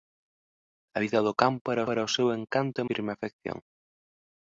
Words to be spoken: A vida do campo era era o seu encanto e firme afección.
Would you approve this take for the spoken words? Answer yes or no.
yes